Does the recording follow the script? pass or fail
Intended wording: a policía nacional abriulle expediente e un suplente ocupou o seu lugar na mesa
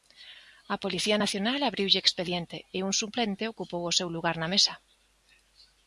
pass